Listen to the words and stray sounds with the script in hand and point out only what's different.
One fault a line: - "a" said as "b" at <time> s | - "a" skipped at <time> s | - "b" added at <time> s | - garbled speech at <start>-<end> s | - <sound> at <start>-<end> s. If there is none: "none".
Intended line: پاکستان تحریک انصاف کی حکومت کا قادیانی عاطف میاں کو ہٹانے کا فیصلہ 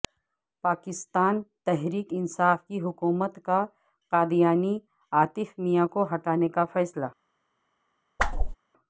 - whoosh at 8.2-8.6 s